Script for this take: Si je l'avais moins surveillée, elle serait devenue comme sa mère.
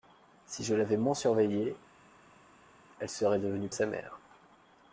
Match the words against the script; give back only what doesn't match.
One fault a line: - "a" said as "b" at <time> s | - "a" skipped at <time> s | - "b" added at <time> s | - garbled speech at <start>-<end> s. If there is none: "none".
- "comme" skipped at 3.7 s